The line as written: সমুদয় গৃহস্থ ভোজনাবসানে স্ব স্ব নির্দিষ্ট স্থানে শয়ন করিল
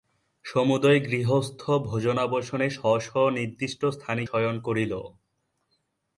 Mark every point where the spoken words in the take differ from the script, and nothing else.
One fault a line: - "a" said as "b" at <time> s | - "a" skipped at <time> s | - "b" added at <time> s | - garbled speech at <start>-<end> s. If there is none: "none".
none